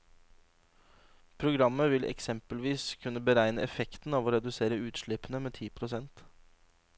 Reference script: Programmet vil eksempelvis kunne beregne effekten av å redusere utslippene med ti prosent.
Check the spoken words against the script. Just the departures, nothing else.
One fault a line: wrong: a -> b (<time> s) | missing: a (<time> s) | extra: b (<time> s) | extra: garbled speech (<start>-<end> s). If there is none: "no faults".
no faults